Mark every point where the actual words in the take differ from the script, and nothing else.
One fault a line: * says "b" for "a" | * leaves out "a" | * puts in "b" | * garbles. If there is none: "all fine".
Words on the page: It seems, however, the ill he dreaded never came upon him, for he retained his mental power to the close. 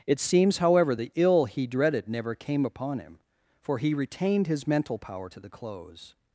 all fine